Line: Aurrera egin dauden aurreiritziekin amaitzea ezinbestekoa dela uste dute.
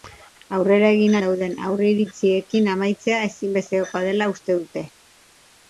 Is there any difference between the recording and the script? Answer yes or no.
no